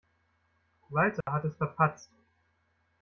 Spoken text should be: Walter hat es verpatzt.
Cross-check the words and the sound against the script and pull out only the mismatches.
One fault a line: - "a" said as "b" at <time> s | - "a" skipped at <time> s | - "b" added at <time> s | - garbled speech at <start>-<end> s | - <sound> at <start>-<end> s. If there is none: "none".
- dropout at 1.2-1.3 s